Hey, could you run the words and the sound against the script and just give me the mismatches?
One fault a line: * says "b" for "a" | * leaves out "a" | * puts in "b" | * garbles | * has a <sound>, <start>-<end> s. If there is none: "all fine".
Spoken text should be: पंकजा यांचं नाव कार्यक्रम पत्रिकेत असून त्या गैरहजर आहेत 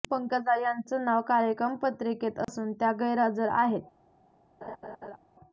* has a dropout, 2.4-2.5 s
* has a laugh, 4.6-5.2 s